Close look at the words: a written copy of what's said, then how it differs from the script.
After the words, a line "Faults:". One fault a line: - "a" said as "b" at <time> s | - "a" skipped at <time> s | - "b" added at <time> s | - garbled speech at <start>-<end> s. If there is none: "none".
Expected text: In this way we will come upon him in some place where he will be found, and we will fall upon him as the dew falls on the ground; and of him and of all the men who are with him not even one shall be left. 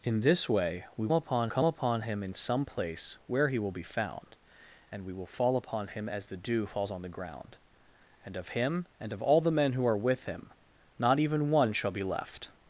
In this way we upon come upon him in some place where he will be found, and we will fall upon him as the dew falls on the ground; and of him and of all the men who are with him not even one shall be left.
Faults:
- "will" said as "upon" at 1.1 s